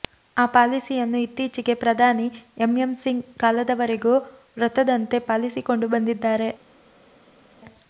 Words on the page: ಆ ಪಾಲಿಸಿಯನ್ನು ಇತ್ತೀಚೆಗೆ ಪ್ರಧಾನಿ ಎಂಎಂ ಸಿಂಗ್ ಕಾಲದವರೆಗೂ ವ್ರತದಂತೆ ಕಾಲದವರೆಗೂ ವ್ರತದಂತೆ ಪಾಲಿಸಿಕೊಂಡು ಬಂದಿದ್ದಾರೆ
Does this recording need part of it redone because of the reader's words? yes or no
yes